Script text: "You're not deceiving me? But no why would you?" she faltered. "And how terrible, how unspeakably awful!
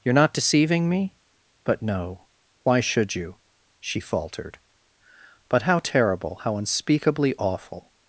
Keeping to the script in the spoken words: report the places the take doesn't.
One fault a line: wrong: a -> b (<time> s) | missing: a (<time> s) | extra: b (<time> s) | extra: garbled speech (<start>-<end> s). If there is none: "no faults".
wrong: would -> should (2.8 s)
wrong: And -> But (5.5 s)